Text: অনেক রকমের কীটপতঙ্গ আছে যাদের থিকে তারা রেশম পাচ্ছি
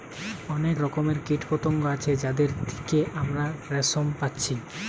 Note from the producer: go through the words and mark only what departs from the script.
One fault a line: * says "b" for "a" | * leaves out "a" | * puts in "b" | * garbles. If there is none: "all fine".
* says "আমরা" for "তারা"